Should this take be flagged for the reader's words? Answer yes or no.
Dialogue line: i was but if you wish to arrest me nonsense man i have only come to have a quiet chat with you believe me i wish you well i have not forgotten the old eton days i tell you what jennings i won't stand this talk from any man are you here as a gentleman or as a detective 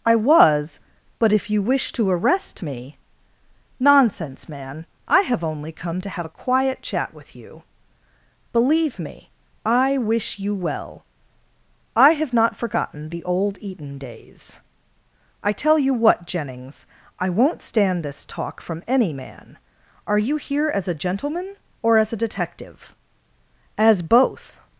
yes